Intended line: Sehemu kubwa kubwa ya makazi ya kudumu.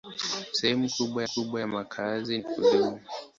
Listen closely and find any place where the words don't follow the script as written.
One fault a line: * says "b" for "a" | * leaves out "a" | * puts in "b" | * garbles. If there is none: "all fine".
all fine